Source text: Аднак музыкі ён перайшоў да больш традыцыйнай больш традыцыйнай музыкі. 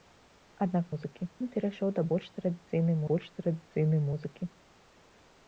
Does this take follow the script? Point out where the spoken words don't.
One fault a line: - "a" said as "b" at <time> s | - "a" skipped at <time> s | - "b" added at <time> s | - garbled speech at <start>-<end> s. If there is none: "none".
none